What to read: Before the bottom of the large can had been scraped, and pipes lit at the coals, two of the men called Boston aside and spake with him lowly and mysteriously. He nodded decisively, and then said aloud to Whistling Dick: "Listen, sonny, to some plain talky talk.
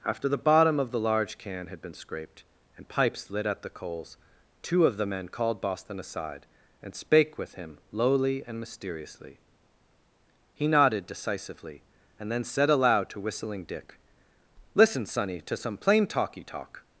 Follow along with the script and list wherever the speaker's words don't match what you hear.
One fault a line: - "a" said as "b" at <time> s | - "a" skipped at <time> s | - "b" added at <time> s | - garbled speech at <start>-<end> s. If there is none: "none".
- "Before" said as "After" at 0.0 s